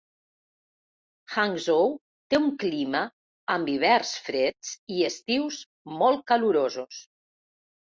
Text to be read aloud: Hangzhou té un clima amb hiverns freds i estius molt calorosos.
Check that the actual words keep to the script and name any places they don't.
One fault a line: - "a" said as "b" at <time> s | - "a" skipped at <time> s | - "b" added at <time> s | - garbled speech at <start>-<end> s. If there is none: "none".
none